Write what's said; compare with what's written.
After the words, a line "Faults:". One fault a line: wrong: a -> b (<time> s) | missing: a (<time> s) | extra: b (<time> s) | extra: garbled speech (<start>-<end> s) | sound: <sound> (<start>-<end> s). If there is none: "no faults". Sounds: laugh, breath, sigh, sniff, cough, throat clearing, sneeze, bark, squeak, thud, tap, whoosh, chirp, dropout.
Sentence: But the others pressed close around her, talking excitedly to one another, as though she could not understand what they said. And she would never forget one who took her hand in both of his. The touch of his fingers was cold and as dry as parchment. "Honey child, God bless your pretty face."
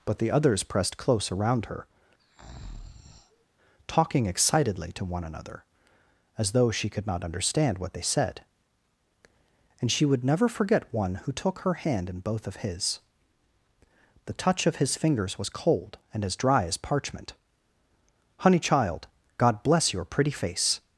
But the others pressed close around her, talking excitedly to one another, as though she could not understand what they said. And she would never forget one who took her hand in both of his. The touch of his fingers was cold and as dry as parchment. "Honey child, God bless your pretty face."
Faults:
sound: breath (2.2-3.5 s)